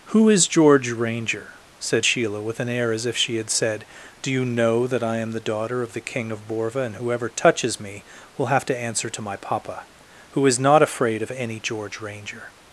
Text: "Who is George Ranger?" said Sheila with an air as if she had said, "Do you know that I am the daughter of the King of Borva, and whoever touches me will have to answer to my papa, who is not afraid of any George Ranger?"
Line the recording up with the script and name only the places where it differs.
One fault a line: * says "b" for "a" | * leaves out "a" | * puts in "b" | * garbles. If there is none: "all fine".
all fine